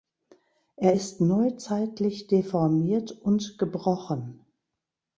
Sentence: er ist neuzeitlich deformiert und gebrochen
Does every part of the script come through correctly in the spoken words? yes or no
yes